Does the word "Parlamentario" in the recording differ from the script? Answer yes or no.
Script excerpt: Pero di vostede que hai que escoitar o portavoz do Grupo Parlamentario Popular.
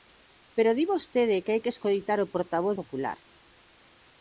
yes